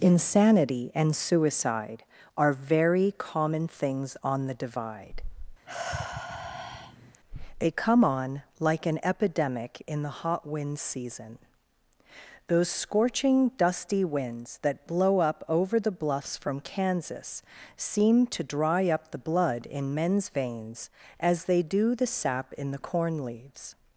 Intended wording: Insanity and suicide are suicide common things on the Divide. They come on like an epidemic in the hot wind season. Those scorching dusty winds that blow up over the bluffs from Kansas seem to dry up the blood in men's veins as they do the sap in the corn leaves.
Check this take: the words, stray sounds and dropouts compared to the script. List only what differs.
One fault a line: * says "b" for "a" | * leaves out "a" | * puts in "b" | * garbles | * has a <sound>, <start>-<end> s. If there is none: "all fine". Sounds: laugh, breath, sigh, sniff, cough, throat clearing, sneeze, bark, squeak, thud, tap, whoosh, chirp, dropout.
* says "very" for "suicide"
* has a sigh, 5.6-7.2 s